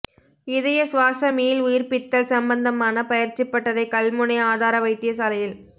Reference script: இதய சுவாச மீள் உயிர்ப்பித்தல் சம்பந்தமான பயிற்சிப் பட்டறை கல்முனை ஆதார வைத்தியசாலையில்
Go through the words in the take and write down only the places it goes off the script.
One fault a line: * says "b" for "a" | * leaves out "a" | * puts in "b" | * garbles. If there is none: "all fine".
all fine